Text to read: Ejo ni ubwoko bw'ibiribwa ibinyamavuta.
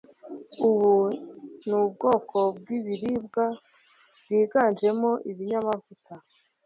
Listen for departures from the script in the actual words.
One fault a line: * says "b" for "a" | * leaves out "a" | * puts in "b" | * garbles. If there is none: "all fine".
* says "Ubu" for "Ejo"
* puts in "bwiganjemo"